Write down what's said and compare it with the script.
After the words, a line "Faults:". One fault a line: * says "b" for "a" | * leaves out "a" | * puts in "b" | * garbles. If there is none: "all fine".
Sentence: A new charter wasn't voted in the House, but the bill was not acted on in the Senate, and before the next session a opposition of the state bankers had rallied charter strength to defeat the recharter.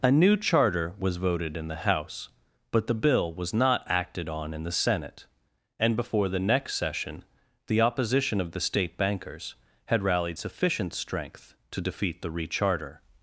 A new charter was voted in the House, but the bill was not acted on in the Senate, and before the next session the opposition of the state bankers had rallied sufficient strength to defeat the recharter.
Faults:
* says "was" for "wasn't"
* says "the" for "a"
* says "sufficient" for "charter"